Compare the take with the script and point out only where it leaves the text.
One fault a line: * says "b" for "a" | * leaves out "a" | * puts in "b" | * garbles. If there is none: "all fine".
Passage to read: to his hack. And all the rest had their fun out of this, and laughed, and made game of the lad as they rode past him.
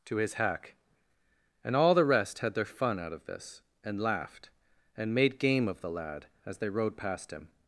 all fine